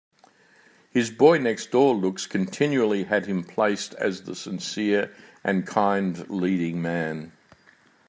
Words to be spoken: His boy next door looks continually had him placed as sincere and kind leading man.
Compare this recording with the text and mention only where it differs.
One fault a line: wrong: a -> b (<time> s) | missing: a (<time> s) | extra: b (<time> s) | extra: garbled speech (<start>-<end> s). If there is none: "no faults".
extra: the (4.2 s)